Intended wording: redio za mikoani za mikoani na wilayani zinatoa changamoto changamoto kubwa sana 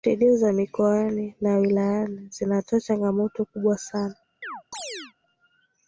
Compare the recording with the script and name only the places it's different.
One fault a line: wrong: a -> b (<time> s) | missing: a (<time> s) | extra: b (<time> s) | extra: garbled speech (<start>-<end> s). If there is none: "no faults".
missing: za mikoani (1.4 s)
missing: changamoto (3.5 s)